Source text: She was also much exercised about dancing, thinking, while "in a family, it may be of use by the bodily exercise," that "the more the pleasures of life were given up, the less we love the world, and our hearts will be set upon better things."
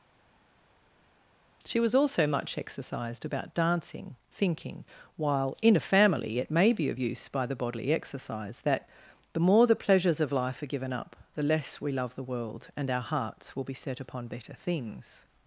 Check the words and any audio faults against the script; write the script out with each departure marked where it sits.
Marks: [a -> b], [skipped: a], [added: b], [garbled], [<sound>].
She was also much exercised about dancing, thinking, while "in a family, it may be of use by the bodily exercise," that "the more the pleasures of life [were -> are] given up, the less we love the world, and our hearts will be set upon better things."